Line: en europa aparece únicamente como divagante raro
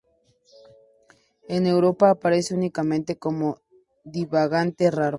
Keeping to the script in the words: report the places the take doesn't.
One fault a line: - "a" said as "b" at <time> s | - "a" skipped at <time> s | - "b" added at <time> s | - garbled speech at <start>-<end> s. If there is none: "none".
none